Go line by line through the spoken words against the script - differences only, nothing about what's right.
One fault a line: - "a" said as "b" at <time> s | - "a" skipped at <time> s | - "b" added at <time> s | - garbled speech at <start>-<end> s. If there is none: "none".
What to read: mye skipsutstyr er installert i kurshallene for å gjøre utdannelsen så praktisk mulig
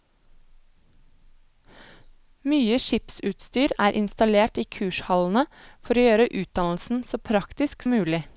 none